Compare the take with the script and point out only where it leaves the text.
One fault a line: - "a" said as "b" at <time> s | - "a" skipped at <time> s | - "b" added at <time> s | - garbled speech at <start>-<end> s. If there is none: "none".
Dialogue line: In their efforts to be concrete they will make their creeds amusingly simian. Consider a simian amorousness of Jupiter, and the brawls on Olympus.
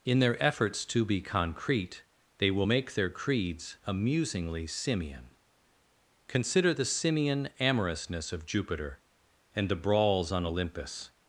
- "a" said as "the" at 6.7 s